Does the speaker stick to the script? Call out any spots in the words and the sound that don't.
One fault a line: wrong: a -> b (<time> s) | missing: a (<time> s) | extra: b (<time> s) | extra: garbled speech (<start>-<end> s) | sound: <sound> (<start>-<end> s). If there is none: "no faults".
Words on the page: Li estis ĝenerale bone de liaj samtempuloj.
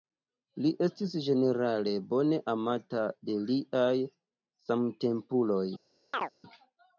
extra: amata (2.5 s)
sound: chirp (6.1-6.3 s)